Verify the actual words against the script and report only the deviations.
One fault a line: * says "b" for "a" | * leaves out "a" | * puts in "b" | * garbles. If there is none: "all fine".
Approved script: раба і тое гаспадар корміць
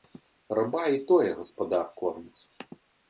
all fine